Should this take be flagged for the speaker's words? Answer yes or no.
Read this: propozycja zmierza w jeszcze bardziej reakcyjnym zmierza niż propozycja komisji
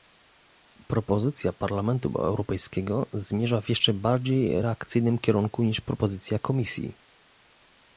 yes